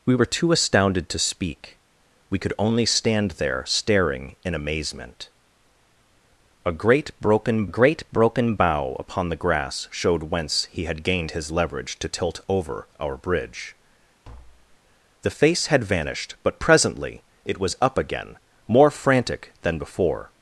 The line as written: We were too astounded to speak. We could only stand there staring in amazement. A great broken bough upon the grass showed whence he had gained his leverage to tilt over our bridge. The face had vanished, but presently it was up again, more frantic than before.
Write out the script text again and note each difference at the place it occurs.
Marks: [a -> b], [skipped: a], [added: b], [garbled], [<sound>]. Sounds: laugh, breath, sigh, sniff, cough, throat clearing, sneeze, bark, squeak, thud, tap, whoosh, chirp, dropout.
We were too astounded to speak. We could only stand there staring in amazement. A great broken [added: great broken] bough upon the grass showed whence he had gained his leverage to tilt over our bridge. [tap] The face had vanished, but presently it was up again, more frantic than before.